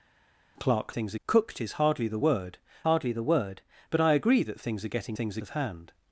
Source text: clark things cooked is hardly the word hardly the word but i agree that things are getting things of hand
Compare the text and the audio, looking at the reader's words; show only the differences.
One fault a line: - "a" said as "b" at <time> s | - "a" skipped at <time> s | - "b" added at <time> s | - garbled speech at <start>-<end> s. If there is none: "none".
none